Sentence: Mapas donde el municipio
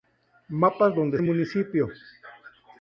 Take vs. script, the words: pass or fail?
pass